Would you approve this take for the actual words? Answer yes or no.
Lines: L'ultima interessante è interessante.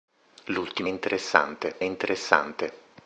yes